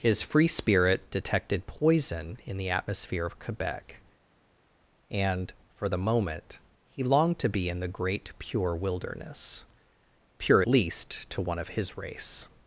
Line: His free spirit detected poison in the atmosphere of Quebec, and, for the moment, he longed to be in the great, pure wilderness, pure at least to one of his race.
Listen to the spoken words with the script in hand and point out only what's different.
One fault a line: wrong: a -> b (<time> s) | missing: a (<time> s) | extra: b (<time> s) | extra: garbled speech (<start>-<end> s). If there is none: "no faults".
missing: at (10.6 s)